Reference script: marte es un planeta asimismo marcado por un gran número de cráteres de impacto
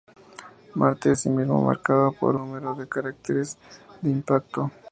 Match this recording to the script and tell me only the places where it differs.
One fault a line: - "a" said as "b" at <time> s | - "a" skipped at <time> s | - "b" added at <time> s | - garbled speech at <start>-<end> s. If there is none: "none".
- "es un planeta" skipped at 1.1 s
- "un gran" skipped at 2.4 s